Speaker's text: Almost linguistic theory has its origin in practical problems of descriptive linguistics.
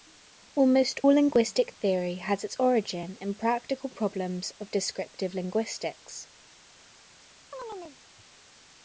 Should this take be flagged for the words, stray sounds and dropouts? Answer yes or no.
yes